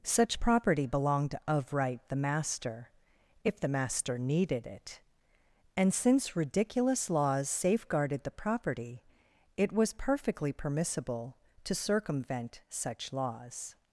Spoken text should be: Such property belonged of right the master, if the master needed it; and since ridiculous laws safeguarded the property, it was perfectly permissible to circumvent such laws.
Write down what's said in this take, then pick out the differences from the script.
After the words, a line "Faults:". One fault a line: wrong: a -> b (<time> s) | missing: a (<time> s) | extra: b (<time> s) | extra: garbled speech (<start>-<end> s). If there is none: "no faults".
Such property belonged of right the master, if the master needed it; and since ridiculous laws safeguarded the property, it was perfectly permissible to circumvent such laws.
Faults:
no faults